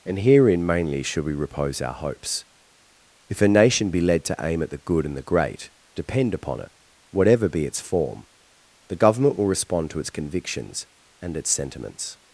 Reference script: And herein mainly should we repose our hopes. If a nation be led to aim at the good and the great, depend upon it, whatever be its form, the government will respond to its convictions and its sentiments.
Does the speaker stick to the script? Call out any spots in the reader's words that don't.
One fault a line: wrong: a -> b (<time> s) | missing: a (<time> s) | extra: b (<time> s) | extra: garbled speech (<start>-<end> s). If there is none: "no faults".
no faults